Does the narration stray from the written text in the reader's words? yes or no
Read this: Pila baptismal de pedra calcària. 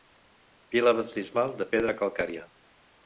no